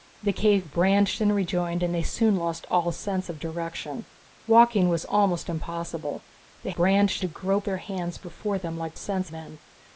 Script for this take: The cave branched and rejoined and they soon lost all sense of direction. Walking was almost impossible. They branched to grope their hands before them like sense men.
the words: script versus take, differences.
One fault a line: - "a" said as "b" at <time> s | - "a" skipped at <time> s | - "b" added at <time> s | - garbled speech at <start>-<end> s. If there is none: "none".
none